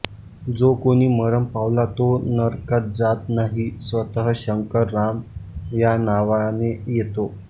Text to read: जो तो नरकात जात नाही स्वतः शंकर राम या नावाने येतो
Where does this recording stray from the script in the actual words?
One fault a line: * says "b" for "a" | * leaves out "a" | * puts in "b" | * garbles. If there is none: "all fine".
* puts in "कोणी मरण पावला"